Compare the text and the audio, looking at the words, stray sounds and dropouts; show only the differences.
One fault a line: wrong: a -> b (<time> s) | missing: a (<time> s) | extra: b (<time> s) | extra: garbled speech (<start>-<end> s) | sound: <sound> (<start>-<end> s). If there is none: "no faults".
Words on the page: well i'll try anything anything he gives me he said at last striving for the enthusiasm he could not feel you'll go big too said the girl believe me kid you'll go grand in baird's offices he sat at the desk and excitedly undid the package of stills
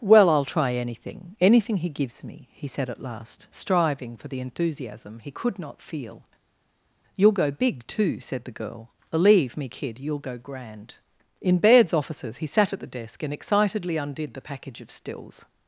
no faults